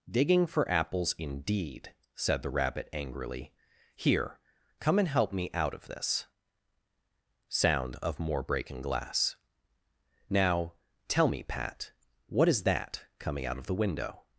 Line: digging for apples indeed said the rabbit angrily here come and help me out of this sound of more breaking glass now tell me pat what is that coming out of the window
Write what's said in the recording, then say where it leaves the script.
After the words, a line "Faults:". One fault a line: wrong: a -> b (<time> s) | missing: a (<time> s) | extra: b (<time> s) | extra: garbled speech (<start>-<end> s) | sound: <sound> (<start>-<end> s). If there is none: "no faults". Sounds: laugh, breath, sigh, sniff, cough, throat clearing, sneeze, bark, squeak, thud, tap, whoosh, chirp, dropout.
digging for apples indeed said the rabbit angrily here come and help me out of this sound of more breaking glass now tell me pat what is that coming out of the window
Faults:
no faults